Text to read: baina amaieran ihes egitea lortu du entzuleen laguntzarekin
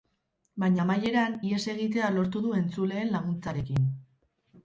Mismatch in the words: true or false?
false